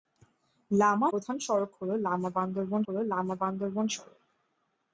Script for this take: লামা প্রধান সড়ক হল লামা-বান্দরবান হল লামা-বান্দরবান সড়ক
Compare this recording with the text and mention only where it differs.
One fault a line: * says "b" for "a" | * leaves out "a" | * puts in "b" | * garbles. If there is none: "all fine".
all fine